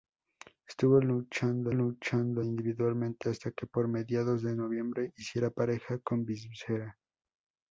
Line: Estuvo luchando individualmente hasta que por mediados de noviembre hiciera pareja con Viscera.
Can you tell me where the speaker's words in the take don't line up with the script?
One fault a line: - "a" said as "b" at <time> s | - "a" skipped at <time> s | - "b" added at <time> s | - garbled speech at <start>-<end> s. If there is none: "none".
- "luchando" added at 1.7 s